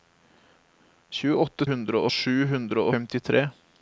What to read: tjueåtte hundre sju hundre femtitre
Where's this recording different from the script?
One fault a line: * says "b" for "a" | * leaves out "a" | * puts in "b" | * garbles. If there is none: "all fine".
all fine